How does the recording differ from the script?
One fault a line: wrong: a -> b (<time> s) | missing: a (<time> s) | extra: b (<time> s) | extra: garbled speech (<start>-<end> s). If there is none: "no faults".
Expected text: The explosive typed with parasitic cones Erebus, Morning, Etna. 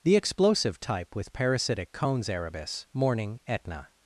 wrong: typed -> type (0.8 s)